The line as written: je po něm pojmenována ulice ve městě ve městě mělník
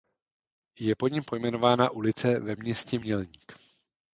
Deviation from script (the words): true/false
true